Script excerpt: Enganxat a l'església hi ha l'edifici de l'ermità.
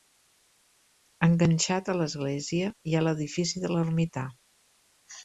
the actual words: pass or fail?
pass